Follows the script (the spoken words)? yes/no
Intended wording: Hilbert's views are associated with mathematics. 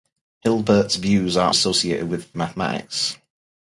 yes